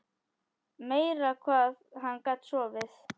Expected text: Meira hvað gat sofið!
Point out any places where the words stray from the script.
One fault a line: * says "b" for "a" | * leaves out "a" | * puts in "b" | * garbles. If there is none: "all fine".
* puts in "hann"